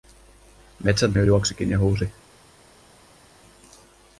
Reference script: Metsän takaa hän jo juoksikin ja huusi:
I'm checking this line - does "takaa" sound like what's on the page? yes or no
no